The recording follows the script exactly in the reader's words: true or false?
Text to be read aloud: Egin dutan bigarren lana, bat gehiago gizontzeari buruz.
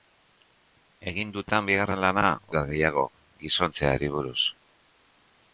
true